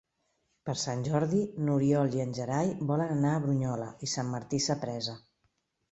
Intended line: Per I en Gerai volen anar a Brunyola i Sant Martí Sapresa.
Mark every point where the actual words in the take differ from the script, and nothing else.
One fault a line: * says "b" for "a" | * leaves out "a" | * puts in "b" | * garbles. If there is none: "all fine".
* puts in "Sant Jordi n'Oriol"